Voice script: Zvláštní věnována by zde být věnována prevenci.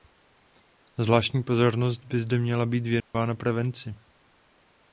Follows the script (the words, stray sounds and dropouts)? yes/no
no